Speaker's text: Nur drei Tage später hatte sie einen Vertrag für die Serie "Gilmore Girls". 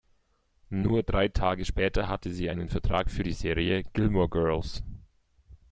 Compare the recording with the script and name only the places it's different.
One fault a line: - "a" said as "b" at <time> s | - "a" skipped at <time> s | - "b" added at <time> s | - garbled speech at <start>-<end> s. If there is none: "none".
none